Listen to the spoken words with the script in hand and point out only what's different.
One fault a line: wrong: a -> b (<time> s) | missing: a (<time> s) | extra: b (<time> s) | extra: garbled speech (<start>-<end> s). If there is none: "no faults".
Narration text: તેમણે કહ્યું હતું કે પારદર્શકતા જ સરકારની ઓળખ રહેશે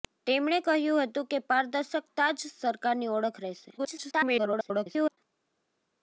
extra: garbled speech (3.8-5.2 s)